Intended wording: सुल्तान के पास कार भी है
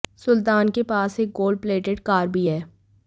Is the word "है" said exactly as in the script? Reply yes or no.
yes